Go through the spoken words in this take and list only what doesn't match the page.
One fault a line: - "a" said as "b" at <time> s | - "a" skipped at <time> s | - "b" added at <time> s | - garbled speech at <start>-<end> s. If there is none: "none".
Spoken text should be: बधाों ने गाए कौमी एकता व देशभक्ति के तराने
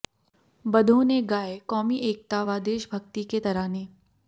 none